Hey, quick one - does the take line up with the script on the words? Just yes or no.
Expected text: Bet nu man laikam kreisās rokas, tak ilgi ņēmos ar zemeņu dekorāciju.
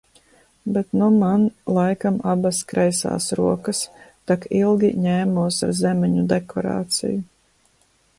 no